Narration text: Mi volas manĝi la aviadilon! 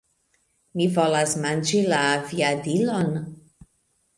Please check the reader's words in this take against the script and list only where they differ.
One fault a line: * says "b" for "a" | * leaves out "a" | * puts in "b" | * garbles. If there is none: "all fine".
all fine